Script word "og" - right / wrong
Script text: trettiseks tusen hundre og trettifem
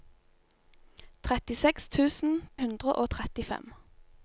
right